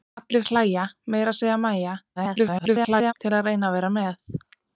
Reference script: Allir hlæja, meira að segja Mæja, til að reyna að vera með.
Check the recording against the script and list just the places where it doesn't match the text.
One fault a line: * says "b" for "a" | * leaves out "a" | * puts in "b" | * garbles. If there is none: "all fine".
* garbles